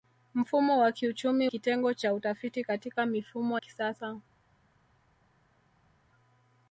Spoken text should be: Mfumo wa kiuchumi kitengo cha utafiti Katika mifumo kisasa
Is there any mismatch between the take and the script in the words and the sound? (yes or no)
no